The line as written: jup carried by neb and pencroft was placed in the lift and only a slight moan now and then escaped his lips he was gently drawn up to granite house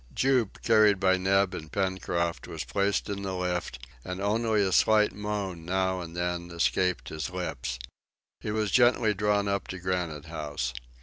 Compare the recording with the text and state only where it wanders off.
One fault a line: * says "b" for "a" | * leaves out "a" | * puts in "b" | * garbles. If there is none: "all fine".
all fine